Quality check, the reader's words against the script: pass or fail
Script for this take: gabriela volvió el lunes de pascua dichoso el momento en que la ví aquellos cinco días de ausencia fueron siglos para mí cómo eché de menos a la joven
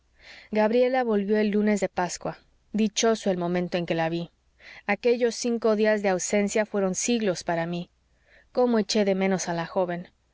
pass